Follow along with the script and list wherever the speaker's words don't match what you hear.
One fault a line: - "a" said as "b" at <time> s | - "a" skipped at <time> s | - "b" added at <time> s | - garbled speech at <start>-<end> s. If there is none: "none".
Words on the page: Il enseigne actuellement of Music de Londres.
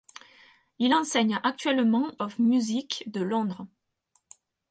none